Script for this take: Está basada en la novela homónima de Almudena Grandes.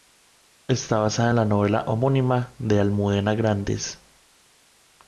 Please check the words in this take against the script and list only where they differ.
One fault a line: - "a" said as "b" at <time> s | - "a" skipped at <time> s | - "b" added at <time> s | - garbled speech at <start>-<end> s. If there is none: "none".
none